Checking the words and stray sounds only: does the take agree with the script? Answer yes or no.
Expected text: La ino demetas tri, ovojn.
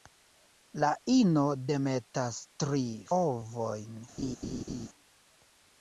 no